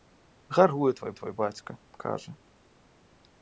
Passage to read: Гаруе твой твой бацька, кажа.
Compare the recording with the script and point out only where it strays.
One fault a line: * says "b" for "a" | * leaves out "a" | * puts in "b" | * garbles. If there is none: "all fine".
all fine